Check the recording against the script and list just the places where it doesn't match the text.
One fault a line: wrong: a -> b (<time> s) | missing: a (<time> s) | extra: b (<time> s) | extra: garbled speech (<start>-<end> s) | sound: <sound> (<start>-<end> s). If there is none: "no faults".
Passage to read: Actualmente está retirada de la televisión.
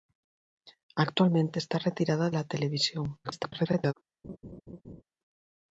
missing: de (2.3 s)
extra: garbled speech (3.2-3.9 s)
sound: laugh (4.2-5.0 s)